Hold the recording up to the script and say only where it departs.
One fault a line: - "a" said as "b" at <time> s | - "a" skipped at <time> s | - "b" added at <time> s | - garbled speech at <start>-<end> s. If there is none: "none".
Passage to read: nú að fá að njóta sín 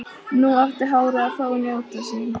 - "átti hárið" added at 0.6 s